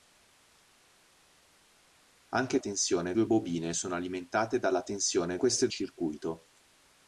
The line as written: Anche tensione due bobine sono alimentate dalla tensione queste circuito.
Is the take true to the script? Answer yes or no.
yes